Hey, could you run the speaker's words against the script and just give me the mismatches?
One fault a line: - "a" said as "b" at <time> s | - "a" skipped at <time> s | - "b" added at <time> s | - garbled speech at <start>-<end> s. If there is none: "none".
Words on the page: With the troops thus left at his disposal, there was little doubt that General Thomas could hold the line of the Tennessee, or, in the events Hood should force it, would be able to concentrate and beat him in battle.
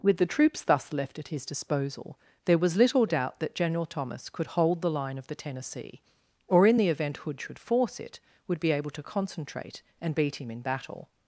- "events" said as "event" at 6.9 s